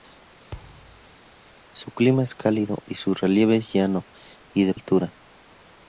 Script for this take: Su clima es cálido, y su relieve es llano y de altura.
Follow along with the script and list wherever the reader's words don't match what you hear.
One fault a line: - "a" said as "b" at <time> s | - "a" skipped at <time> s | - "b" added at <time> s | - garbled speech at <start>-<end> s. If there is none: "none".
none